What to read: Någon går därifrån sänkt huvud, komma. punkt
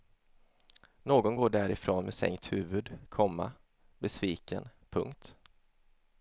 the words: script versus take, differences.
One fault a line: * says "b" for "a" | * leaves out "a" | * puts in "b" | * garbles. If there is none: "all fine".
* puts in "med"
* puts in "besviken"